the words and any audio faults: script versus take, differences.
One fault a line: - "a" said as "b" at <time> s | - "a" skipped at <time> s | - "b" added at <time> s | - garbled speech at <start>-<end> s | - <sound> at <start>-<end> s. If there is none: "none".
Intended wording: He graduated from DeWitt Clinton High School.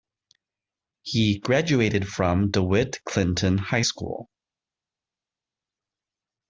none